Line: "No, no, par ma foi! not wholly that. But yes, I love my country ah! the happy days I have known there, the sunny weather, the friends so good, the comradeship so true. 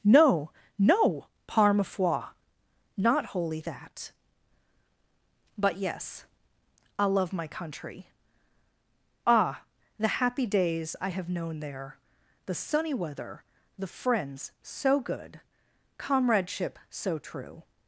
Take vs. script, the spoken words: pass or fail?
fail